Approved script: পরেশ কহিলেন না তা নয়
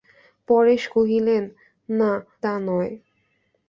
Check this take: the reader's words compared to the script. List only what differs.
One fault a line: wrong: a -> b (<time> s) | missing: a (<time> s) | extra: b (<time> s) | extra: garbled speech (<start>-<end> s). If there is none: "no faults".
no faults